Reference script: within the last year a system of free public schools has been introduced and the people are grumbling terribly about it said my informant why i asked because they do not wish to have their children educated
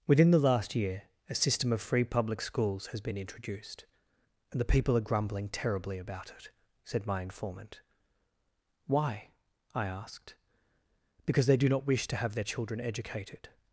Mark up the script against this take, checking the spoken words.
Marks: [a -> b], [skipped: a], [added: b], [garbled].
within the last year a system of free public schools has been introduced and the people are grumbling terribly about it said my informant why i asked because they do not wish to have their children educated